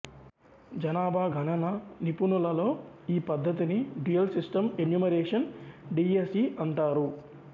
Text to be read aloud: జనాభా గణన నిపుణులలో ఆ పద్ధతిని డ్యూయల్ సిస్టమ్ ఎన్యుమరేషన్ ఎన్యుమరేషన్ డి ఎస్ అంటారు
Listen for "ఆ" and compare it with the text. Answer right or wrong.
wrong